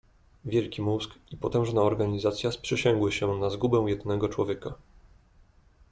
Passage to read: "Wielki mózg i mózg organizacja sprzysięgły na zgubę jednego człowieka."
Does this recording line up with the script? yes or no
no